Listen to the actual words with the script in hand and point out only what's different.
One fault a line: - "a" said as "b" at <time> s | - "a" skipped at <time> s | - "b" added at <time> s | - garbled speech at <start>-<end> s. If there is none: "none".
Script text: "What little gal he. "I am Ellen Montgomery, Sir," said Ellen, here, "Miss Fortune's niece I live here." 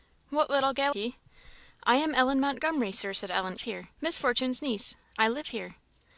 none